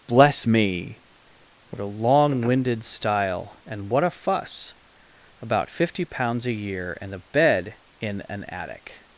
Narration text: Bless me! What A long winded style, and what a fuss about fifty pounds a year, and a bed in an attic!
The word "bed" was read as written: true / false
true